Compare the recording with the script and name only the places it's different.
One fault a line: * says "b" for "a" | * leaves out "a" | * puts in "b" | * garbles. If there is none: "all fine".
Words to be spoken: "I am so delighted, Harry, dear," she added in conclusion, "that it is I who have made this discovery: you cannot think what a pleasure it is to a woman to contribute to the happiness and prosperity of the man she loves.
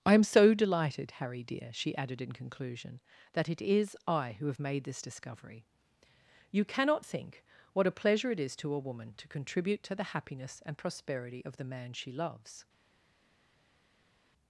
all fine